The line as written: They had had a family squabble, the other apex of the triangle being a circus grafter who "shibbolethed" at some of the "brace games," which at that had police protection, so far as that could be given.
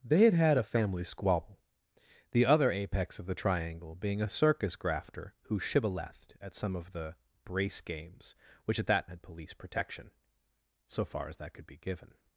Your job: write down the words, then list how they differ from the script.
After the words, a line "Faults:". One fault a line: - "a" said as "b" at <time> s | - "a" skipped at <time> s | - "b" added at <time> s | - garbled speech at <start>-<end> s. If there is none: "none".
They had had a family squabble, the other apex of the triangle being a circus grafter who "shibbolethed" at some of the "brace games," which at that had police protection, so far as that could be given.
Faults:
none